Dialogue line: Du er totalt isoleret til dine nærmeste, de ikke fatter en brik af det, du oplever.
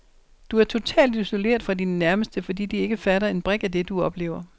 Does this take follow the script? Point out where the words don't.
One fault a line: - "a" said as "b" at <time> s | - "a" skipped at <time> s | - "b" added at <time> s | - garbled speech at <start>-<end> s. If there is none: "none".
- "til" said as "fra" at 1.6 s
- "fordi" added at 2.4 s